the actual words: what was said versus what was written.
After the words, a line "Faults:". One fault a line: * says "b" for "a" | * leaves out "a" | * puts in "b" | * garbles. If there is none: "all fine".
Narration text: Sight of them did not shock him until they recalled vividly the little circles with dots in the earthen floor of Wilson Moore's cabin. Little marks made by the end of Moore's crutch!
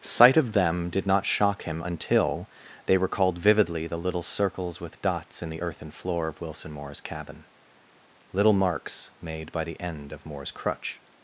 Sight of them did not shock him until they recalled vividly the little circles with dots in the earthen floor of Wilson Moore's cabin. Little marks made by the end of Moore's crutch!
Faults:
all fine